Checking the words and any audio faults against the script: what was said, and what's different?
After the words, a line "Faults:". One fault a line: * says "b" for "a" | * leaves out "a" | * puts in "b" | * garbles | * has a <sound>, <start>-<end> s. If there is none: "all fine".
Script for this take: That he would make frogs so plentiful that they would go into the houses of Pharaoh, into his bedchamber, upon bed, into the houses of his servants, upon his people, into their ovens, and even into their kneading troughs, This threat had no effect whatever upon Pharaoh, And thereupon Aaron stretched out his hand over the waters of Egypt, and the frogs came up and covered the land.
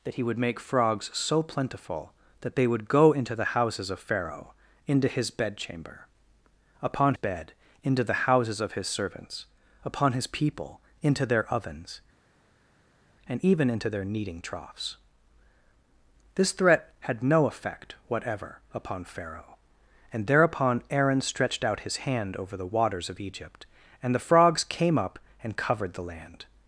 That he would make frogs so plentiful that they would go into the houses of Pharaoh, into his bedchamber, upon bed, into the houses of his servants, upon his people, into their ovens, and even into their kneading troughs, This threat had no effect whatever upon Pharaoh, And thereupon Aaron stretched out his hand over the waters of Egypt, and the frogs came up and covered the land.
Faults:
all fine